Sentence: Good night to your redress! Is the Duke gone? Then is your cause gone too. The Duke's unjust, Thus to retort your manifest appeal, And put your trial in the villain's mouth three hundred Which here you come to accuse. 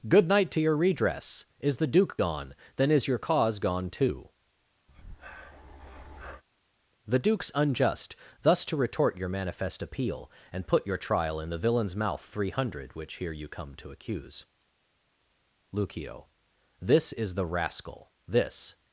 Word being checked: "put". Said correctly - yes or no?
yes